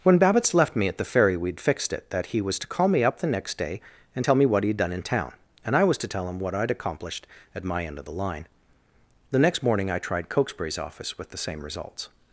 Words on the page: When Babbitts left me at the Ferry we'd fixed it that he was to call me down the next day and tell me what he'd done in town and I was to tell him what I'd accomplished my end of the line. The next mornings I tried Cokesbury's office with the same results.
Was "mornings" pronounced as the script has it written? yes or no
no